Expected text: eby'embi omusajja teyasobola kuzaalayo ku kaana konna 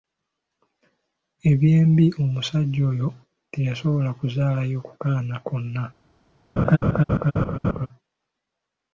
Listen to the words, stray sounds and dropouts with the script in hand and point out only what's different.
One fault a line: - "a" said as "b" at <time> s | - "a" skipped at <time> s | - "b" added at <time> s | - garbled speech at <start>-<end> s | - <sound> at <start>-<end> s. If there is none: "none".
- "oyo" added at 2.9 s
- laugh at 6.6-7.9 s